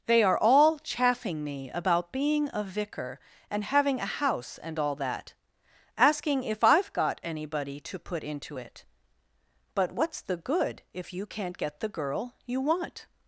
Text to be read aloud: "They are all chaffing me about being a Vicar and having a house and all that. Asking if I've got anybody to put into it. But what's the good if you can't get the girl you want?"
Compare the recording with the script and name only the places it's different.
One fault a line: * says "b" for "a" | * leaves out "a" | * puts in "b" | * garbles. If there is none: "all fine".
all fine